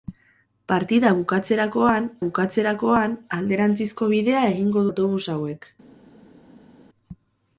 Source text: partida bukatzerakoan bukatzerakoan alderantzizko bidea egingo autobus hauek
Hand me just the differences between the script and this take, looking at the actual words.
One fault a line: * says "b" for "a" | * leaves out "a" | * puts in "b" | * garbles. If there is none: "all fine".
all fine